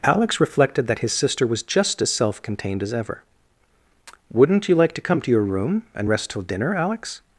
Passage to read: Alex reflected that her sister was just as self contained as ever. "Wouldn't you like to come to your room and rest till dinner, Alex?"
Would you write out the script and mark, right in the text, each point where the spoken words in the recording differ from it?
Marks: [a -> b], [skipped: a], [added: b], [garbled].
Alex reflected that [her -> his] sister was just as self contained as ever. "Wouldn't you like to come to your room and rest till dinner, Alex?"